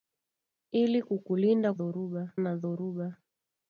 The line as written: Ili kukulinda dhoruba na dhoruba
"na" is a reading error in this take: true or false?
false